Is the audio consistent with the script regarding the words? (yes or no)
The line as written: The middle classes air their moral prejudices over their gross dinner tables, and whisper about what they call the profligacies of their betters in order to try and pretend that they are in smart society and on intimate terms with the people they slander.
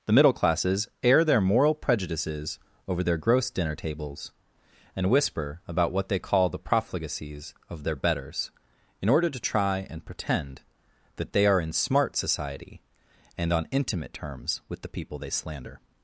yes